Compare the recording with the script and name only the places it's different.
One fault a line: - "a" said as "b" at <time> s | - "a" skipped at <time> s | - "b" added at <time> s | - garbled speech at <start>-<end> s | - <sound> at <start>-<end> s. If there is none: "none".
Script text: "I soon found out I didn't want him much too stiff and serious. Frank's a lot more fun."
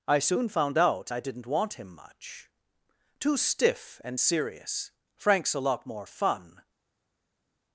none